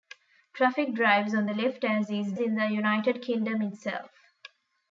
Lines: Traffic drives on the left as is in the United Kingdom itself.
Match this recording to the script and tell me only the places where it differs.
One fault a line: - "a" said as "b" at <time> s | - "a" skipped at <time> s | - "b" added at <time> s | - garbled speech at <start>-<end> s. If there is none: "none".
none